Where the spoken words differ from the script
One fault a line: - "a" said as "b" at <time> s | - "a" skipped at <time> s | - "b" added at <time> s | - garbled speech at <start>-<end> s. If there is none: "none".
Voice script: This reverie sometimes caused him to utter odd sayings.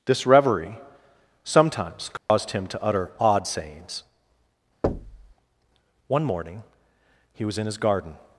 - "One morning he was in his garden" added at 6.1 s